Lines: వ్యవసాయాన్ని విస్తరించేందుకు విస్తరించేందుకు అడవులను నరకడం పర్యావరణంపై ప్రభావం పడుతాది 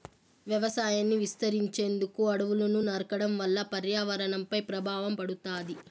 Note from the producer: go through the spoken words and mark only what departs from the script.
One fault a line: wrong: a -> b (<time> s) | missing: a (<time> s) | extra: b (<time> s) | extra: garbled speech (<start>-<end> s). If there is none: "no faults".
missing: విస్తరించేందుకు (2.2 s)
extra: వల్ల (3.4 s)